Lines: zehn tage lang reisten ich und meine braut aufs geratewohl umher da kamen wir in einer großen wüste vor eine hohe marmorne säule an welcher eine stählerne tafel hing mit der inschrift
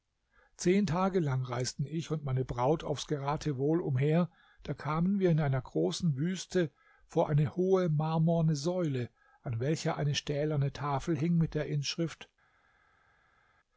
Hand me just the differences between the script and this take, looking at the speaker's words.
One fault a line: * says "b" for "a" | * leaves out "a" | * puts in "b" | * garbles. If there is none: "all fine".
all fine